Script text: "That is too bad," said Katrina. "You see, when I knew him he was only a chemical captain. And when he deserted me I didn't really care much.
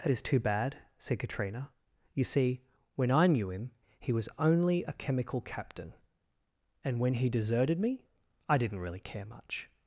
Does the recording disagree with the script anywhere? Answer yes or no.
no